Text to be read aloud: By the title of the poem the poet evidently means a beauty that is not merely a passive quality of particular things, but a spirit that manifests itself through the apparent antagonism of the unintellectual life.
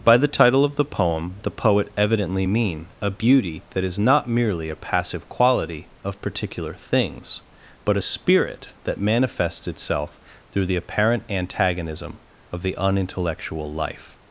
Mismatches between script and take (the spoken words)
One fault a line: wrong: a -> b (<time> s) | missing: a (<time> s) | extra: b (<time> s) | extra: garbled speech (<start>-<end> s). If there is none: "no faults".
wrong: means -> mean (2.5 s)